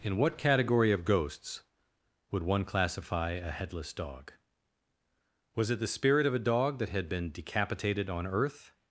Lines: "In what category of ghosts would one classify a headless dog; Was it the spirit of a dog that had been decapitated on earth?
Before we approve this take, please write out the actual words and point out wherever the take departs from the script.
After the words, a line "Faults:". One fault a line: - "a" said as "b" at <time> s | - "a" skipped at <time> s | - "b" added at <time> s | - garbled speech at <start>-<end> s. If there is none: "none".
"In what category of ghosts would one classify a headless dog; Was it the spirit of a dog that had been decapitated on earth?
Faults:
none